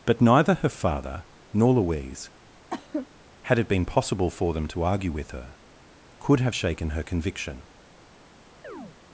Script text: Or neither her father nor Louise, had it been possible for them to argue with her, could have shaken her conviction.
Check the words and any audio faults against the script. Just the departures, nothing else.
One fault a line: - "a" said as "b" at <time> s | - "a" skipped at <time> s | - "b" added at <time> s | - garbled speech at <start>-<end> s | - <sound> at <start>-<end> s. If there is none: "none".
- "Or" said as "But" at 0.1 s
- cough at 2.7-3.1 s
- chirp at 8.6-9.0 s